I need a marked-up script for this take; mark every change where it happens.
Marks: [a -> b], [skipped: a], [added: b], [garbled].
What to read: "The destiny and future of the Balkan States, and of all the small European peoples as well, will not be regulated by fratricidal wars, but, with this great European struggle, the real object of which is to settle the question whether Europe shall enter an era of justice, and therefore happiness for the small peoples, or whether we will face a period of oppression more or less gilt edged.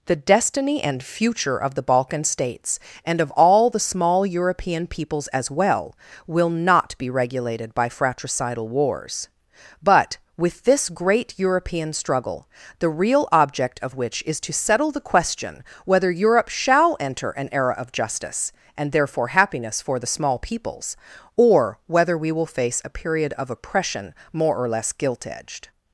"The destiny and future of the Balkan States, and of all the small European peoples as well, will not be regulated by fratricidal wars, but, with this great European struggle, the real object of which is to settle the question whether Europe shall enter an era of justice, and therefore happiness for the small peoples, or whether we will face a period of oppression more or less gilt edged.